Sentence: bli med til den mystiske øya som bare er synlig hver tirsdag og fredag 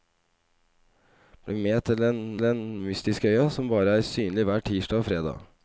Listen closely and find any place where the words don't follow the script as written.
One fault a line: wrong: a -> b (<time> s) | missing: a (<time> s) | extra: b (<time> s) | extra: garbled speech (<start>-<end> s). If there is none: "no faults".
extra: den (2.4 s)